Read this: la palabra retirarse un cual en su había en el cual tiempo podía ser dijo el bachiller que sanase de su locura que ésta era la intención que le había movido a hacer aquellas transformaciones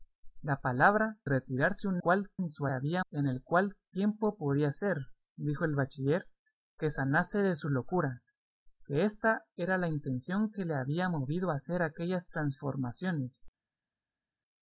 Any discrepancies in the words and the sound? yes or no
no